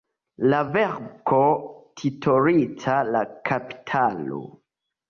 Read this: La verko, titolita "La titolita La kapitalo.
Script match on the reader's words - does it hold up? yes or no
no